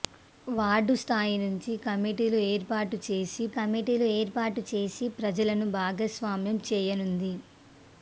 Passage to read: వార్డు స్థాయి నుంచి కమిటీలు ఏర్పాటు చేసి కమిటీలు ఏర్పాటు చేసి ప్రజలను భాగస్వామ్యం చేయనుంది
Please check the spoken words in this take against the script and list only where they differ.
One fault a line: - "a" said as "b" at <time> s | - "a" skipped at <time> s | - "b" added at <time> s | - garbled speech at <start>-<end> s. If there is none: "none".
none